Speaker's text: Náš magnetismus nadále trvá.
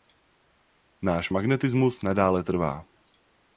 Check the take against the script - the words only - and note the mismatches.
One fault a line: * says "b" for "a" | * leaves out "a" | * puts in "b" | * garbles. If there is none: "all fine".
all fine